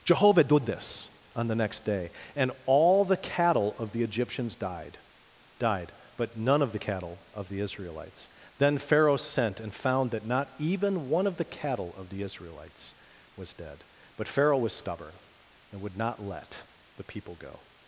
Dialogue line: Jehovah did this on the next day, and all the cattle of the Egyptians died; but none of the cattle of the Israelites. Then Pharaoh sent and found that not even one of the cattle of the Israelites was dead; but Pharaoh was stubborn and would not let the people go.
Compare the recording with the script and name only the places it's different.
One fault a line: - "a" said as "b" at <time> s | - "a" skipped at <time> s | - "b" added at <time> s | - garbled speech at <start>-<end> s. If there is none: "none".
- "died" added at 5.6 s